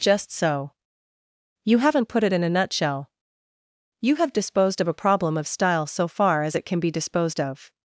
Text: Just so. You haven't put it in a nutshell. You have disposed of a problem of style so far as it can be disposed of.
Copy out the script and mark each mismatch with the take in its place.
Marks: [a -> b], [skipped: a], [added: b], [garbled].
Just so. You haven't put it in a nutshell. You have disposed of a problem of style so far as it can be disposed of.